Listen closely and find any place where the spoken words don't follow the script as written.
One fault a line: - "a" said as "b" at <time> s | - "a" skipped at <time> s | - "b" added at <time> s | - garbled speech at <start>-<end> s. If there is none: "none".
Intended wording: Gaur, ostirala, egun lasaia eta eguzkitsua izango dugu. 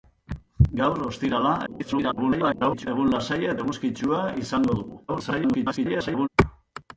- garbled speech at 1.7-2.9 s
- "eta" skipped at 3.5 s
- garbled speech at 5.1-6.3 s